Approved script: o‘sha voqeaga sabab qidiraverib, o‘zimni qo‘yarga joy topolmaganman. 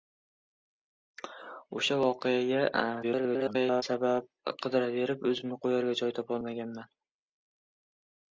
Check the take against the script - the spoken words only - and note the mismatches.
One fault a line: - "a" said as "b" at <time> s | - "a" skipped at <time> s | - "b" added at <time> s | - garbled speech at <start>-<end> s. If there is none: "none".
- garbled speech at 3.0-3.8 s